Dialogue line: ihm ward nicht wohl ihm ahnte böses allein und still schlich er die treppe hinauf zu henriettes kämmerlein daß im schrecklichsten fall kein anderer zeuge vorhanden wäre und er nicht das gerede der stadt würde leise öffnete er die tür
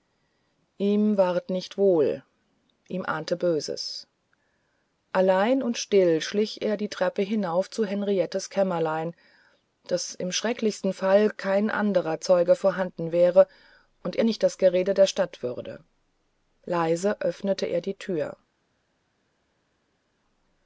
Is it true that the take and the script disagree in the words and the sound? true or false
false